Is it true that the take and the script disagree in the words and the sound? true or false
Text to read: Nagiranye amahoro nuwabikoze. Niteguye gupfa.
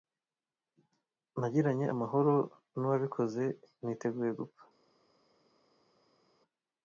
false